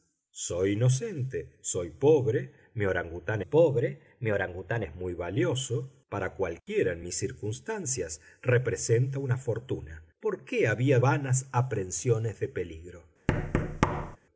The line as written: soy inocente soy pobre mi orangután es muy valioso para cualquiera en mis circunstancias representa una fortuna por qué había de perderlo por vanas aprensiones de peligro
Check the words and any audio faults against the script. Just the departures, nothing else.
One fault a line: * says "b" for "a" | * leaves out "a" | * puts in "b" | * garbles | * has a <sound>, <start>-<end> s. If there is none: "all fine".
* puts in "pobre mi orangután"
* leaves out "de perderlo por"
* has a thud, 13.3-14.2 s